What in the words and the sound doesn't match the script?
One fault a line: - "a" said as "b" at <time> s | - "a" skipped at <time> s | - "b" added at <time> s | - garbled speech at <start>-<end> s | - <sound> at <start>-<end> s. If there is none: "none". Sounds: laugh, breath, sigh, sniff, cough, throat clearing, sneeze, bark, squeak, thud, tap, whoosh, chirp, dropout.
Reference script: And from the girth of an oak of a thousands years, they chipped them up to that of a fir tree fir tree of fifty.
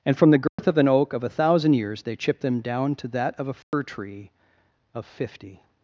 - dropout at 0.5-0.6 s
- "thousands" said as "thousand" at 1.3 s
- "up" said as "down" at 2.6 s
- dropout at 3.6-3.7 s
- "fir tree" skipped at 4.3 s